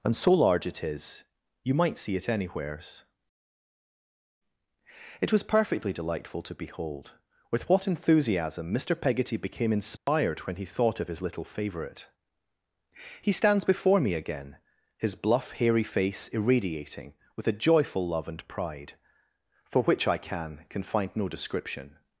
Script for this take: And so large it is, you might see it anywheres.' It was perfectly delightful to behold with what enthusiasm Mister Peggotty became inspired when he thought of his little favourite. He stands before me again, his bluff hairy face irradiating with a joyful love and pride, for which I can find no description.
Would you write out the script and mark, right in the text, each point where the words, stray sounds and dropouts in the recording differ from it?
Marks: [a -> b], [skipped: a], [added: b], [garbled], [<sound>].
And so large it is, you might see it anywheres.' It was perfectly delightful to behold with what enthusiasm Mister Peggotty became inspired [dropout] when he thought of his little favourite. He stands before me again, his bluff hairy face irradiating with a joyful love and pride, for which I can [added: can] find no description.